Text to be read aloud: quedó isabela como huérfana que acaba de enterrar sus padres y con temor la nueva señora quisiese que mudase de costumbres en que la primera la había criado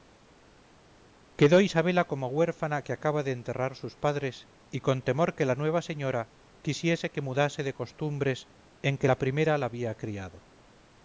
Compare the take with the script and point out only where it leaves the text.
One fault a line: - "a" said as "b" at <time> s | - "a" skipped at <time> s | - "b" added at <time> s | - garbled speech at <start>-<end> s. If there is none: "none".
- "que" added at 5.3 s